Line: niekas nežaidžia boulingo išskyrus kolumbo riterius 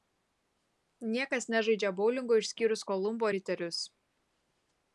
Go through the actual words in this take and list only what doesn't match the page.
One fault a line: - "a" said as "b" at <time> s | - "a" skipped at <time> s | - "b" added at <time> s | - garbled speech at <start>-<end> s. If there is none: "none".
none